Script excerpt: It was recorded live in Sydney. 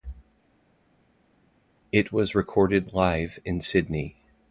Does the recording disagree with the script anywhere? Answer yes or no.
no